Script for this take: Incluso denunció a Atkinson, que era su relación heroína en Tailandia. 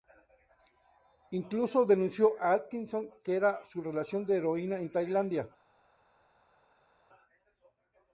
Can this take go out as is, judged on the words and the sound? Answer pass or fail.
fail